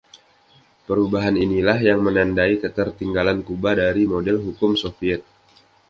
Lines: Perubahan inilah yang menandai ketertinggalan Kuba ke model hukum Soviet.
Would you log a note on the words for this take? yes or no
yes